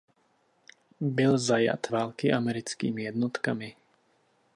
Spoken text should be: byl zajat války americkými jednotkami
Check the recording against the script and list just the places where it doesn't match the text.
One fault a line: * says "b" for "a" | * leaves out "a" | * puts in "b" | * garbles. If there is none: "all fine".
all fine